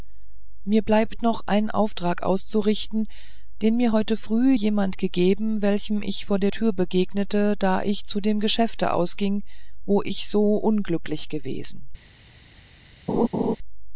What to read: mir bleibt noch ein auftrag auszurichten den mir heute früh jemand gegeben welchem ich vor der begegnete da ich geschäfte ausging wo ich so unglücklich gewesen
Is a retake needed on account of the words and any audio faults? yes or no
yes